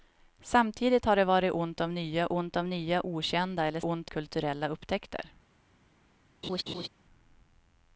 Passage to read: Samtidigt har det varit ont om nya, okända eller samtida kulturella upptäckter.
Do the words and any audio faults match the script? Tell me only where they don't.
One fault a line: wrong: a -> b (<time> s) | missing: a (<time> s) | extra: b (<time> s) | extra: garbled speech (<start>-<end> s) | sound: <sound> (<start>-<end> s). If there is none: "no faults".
extra: ont om nya (2.3 s)
wrong: samtida -> ont (3.8 s)
sound: laugh (6.4-6.9 s)